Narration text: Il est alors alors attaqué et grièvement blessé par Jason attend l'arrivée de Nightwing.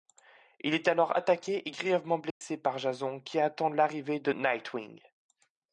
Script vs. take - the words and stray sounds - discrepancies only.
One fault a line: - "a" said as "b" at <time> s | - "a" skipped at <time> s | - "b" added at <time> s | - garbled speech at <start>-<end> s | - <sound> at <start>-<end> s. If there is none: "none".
- "alors" skipped at 1.1 s
- dropout at 2.3-2.4 s
- "qui" added at 3.2 s